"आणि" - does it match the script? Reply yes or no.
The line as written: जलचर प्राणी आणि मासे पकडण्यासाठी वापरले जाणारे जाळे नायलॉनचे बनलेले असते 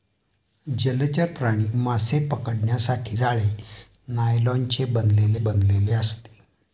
no